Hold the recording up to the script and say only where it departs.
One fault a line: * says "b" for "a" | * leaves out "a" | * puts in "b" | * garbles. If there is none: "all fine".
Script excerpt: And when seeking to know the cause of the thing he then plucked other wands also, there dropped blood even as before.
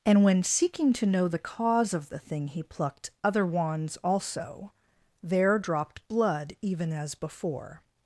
* leaves out "then"